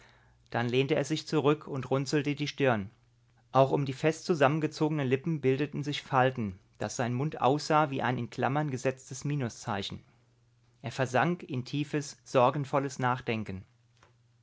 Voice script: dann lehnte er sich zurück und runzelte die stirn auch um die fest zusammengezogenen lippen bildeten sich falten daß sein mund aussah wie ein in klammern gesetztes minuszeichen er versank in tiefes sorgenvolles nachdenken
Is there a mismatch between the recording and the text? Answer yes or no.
no